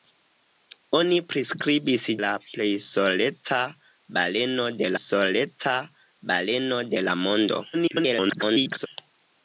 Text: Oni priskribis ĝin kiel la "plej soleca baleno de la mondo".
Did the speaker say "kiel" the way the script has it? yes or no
no